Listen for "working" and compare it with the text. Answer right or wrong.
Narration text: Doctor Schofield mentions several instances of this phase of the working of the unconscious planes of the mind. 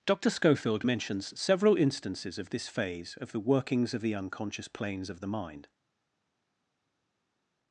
wrong